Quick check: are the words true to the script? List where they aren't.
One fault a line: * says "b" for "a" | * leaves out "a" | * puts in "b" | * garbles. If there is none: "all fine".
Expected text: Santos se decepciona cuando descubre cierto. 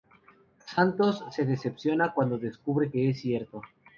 * puts in "que es"